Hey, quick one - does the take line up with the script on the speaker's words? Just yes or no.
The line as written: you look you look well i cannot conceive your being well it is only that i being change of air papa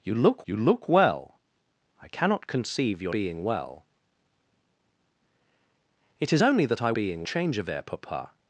yes